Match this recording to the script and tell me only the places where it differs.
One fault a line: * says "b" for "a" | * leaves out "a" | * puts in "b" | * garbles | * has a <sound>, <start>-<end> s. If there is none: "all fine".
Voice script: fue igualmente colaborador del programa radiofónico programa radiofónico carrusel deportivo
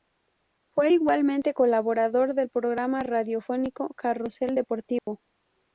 * leaves out "programa radiofónico"
* has a dropout, 5.0-5.1 s